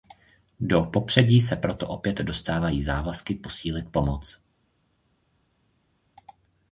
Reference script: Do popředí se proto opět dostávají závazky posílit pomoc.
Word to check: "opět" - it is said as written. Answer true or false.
true